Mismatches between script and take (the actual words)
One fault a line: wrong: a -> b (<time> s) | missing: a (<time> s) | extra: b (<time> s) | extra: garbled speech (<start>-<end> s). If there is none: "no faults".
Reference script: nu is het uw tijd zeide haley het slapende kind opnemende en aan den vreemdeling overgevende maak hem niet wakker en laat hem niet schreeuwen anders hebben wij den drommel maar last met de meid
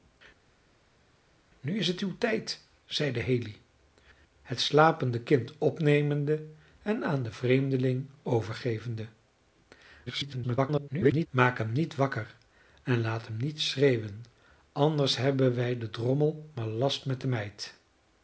extra: garbled speech (10.1-11.3 s)